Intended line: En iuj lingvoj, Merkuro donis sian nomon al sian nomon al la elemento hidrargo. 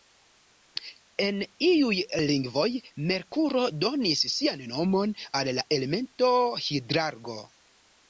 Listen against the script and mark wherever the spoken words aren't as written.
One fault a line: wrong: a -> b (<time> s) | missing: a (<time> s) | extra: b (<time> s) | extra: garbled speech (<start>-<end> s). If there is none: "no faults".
missing: sian nomon al (5.5 s)